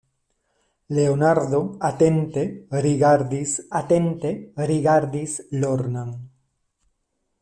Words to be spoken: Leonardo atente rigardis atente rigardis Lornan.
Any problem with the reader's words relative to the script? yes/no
no